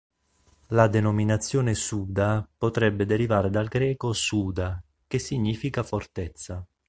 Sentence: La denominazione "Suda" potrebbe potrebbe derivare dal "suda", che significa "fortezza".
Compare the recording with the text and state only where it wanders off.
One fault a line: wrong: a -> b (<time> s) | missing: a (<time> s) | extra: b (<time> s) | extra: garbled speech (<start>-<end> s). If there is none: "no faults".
missing: potrebbe (3.0 s)
extra: greco (3.7 s)